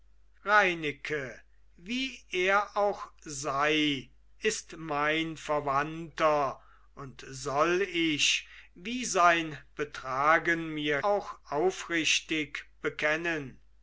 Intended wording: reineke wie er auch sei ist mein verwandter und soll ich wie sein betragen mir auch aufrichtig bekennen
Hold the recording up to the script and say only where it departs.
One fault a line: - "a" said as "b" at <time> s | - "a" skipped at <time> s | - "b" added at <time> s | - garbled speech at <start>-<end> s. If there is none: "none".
none